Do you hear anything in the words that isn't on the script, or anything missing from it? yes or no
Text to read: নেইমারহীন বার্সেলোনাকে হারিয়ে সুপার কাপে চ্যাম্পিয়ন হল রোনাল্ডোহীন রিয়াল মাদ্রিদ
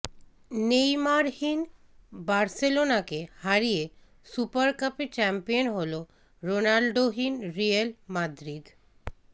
no